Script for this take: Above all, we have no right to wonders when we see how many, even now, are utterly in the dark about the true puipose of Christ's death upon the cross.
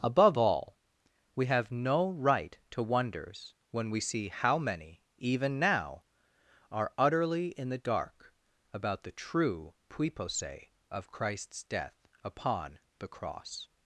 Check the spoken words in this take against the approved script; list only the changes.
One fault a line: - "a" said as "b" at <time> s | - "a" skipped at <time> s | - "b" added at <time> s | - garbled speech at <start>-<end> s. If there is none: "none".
none